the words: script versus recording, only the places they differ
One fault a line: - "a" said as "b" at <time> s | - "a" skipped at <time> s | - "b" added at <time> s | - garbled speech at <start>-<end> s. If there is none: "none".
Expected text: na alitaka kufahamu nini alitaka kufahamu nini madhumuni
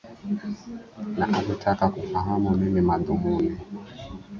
- "alitaka kufahamu nini" skipped at 2.8 s